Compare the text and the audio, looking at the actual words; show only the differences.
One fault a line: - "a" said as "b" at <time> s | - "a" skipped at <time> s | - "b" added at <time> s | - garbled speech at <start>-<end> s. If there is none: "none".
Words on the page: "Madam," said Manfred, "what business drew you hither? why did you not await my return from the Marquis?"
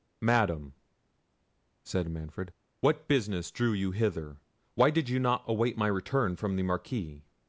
none